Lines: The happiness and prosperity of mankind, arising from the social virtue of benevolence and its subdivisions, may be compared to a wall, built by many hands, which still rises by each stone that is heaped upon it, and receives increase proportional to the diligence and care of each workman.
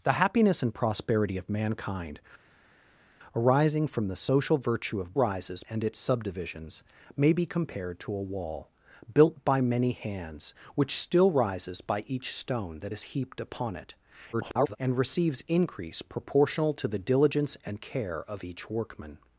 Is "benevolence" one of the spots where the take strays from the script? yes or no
yes